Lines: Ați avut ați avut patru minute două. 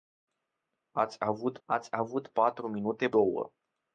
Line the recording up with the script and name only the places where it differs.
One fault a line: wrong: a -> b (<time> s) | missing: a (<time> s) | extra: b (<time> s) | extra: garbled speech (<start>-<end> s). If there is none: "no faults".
no faults